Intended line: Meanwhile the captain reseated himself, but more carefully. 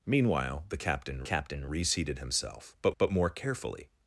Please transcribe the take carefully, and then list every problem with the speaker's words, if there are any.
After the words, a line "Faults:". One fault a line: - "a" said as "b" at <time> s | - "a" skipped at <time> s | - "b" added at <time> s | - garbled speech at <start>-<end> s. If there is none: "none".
Meanwhile the captain captain reseated himself, but but more carefully.
Faults:
- "captain" added at 1.2 s
- "but" added at 3.0 s